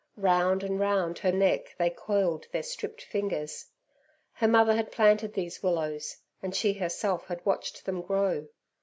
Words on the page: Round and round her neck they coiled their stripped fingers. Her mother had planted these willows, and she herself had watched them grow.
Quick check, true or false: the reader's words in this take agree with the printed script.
true